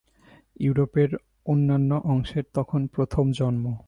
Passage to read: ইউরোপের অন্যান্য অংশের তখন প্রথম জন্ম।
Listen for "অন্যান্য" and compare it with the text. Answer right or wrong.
right